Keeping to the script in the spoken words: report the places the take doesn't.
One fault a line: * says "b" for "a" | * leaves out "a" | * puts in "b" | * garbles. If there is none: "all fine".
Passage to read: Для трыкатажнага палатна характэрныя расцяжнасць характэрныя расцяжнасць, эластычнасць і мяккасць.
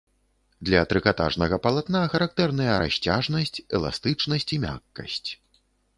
* leaves out "характэрныя расцяжнасць"